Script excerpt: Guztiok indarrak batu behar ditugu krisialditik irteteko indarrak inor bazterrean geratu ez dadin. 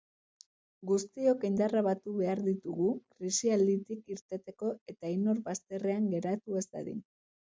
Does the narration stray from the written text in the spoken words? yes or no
yes